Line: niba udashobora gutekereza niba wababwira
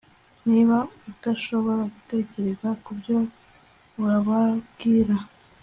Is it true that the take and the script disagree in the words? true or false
true